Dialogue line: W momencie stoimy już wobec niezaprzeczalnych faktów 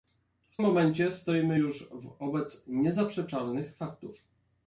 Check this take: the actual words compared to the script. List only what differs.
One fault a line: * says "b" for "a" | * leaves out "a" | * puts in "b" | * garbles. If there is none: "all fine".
all fine